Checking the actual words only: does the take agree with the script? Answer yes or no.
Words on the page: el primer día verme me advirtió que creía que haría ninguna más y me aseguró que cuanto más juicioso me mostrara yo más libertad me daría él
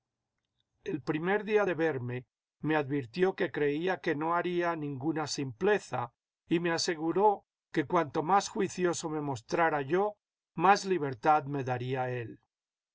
no